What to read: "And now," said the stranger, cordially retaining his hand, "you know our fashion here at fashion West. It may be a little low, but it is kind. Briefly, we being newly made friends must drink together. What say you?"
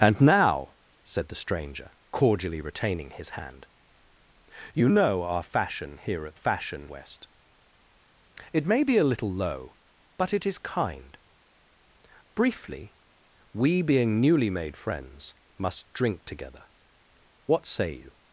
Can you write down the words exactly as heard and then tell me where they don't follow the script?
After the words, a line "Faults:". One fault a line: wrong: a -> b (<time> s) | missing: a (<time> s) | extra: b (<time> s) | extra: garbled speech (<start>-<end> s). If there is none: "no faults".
"And now," said the stranger, cordially retaining his hand, "you know our fashion here at fashion West. It may be a little low, but it is kind. Briefly, we being newly made friends must drink together. What say you?"
Faults:
no faults